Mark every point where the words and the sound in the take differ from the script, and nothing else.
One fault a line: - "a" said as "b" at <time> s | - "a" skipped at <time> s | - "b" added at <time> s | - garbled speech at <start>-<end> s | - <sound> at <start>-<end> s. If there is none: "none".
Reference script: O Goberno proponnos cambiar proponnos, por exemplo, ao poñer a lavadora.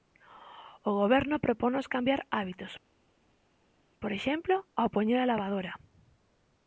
- "proponnos" said as "hábitos" at 2.4 s